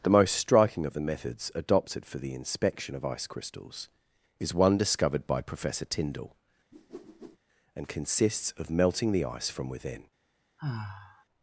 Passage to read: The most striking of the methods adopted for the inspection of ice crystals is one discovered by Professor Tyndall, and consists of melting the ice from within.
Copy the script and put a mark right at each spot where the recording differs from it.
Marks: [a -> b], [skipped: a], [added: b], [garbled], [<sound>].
The most striking of the methods adopted for the inspection of ice crystals is one discovered by Professor Tyndall, [whoosh] and consists of melting the ice from within. [sigh]